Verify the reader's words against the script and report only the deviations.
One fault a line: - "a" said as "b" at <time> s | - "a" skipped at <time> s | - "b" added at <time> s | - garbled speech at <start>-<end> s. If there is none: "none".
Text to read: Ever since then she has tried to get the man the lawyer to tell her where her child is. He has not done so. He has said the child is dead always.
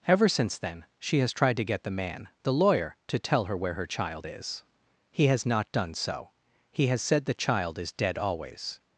none